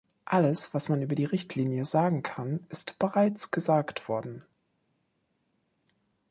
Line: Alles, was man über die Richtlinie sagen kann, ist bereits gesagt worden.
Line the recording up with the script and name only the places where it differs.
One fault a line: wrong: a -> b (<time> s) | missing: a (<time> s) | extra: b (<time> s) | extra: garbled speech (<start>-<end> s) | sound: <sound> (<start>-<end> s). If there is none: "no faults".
no faults